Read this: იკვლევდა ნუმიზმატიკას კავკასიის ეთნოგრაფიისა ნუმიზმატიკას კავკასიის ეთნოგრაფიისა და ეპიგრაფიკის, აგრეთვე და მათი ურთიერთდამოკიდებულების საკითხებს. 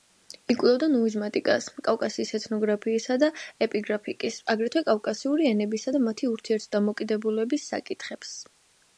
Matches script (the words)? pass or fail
fail